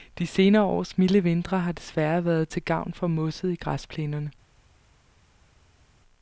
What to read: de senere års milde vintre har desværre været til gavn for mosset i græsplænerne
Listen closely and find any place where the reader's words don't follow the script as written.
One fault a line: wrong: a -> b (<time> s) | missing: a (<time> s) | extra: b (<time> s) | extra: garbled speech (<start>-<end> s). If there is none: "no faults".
no faults